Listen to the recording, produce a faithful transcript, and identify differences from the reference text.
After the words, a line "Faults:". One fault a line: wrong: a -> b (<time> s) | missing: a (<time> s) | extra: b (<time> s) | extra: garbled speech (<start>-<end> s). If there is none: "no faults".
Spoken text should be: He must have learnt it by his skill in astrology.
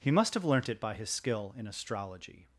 He must have learnt it by his skill in astrology.
Faults:
no faults